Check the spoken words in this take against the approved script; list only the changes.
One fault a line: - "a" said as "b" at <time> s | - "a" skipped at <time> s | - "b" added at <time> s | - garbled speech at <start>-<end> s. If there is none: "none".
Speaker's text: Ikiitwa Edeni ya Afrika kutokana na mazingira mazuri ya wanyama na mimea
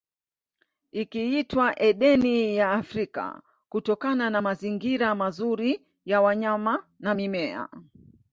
none